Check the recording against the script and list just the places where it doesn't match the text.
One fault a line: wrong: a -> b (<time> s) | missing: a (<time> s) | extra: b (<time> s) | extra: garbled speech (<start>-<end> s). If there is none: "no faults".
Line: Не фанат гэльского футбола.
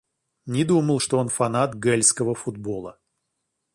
extra: думал что он (0.6 s)